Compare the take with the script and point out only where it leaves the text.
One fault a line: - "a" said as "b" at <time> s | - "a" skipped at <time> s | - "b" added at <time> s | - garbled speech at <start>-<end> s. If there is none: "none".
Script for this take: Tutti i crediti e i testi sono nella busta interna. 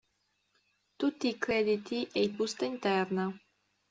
- "testi sono nella" skipped at 2.3 s